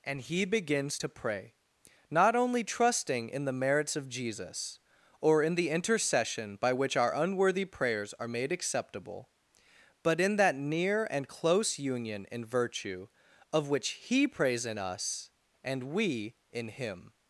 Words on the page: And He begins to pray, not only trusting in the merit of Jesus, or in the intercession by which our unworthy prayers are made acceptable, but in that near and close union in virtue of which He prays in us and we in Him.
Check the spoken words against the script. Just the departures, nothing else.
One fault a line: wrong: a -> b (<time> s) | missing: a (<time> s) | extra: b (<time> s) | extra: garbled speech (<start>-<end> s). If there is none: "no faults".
wrong: merit -> merits (3.5 s)